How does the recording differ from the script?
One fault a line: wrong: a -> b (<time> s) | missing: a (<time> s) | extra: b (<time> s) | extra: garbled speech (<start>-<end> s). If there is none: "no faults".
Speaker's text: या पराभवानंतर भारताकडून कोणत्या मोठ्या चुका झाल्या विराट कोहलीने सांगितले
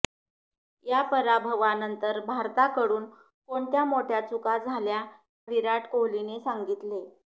no faults